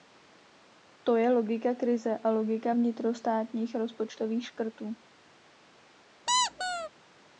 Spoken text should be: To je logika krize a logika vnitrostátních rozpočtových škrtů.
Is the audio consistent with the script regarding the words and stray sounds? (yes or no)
no